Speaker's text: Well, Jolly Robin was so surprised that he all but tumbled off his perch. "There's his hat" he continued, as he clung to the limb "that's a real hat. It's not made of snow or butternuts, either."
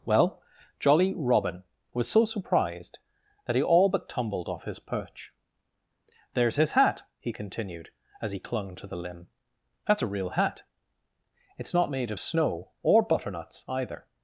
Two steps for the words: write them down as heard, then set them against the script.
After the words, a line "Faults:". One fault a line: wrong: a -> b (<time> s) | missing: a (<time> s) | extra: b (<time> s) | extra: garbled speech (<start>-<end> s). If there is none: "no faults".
Well, Jolly Robin was so surprised that he all but tumbled off his perch. "There's his hat" he continued, as he clung to the limb "that's a real hat. It's not made of snow or butternuts, either."
Faults:
no faults